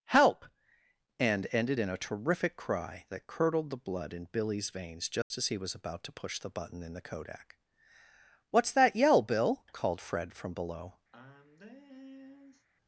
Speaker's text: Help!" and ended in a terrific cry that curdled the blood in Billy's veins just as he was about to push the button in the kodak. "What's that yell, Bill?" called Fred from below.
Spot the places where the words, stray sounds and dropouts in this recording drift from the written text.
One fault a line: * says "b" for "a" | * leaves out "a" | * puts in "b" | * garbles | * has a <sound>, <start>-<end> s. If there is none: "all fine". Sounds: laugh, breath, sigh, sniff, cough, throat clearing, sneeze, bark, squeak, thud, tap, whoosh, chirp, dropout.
* has a dropout, 5.2-5.3 s
* has a sigh, 11.1-12.7 s